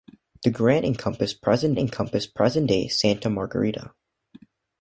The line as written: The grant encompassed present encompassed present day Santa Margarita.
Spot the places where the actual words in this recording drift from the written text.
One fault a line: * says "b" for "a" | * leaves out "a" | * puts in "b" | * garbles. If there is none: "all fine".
all fine